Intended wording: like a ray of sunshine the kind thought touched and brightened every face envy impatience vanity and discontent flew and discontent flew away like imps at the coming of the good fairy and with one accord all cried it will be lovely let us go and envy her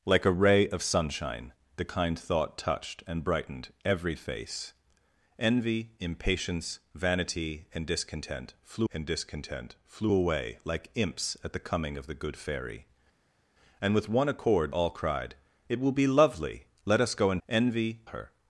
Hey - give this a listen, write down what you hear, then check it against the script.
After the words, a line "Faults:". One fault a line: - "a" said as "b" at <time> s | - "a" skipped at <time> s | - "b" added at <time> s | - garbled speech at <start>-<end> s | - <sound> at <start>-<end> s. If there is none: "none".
like a ray of sunshine the kind thought touched and brightened every face envy impatience vanity and discontent flew and discontent flew away like imps at the coming of the good fairy and with one accord all cried it will be lovely let us go and envy her
Faults:
none